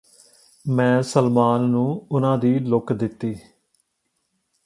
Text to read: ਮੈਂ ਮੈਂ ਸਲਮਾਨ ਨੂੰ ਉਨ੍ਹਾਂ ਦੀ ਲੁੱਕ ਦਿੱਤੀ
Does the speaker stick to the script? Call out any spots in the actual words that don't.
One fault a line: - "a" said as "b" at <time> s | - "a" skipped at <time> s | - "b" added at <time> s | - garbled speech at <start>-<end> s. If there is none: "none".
- "ਮੈਂ" skipped at 1.0 s